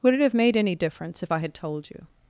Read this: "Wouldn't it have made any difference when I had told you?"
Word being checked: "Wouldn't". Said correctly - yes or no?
no